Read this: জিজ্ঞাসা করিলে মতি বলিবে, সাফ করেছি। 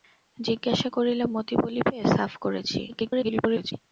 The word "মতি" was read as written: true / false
true